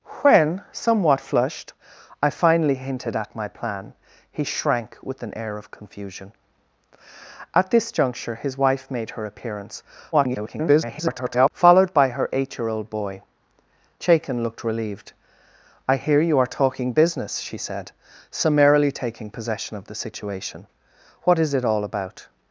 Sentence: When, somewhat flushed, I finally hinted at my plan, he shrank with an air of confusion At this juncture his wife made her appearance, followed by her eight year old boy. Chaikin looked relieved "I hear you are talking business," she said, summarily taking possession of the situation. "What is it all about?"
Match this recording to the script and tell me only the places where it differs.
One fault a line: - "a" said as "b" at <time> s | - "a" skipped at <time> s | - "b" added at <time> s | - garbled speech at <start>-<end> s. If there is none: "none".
- garbled speech at 10.1-11.5 s